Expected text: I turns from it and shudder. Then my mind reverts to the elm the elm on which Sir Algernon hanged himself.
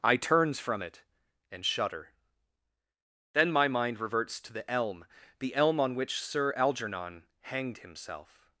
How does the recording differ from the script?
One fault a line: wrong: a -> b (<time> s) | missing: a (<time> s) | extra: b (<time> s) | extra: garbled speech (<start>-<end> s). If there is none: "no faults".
no faults